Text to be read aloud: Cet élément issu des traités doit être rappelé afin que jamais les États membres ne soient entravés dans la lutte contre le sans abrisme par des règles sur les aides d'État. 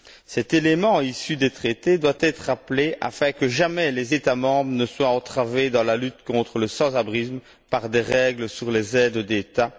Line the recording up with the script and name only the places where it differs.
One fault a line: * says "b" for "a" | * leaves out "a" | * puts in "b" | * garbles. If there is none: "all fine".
all fine